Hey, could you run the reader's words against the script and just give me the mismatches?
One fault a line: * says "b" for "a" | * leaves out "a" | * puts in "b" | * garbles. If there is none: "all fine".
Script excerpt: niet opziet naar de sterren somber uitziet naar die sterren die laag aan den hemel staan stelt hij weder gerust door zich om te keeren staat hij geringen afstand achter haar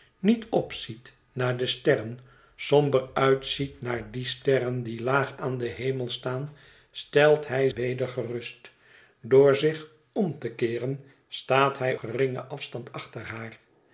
all fine